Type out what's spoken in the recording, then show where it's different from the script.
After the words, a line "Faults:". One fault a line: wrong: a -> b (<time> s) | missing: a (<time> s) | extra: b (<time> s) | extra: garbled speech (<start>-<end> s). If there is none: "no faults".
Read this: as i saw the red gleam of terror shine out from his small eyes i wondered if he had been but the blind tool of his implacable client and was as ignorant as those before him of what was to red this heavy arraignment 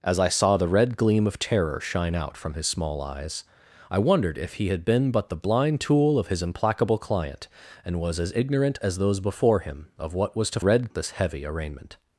as i saw the red gleam of terror shine out from his small eyes i wondered if he had been but the blind tool of his implacable client and was as ignorant as those before him of what was to red this heavy arraignment
Faults:
no faults